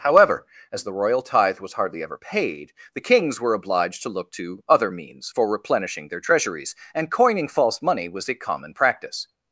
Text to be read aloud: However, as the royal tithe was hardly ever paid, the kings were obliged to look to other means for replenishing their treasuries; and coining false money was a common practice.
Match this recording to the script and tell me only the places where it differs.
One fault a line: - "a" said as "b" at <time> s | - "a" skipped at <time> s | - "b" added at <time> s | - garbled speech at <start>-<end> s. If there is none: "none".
none